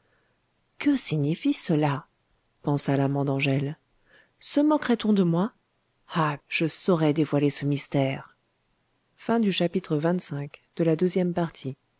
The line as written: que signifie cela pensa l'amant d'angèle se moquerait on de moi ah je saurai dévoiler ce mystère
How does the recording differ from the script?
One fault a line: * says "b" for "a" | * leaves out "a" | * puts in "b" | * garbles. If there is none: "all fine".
all fine